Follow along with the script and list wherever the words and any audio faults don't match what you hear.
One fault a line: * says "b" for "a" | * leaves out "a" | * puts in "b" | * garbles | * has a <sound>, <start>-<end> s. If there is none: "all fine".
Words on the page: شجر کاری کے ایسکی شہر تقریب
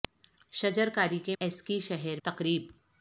all fine